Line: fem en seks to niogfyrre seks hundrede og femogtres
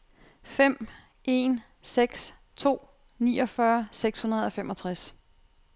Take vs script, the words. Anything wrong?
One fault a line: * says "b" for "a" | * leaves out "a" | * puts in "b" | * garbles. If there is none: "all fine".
all fine